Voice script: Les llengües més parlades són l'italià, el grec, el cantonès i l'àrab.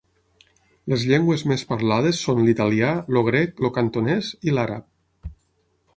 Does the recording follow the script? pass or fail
pass